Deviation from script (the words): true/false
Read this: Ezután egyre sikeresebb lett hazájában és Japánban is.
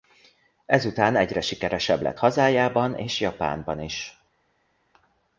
false